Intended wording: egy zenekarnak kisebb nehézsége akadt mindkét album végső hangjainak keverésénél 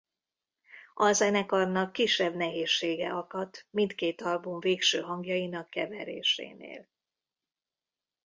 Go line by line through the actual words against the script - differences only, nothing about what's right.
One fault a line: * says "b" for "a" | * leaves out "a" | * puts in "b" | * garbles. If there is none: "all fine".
* says "a" for "egy"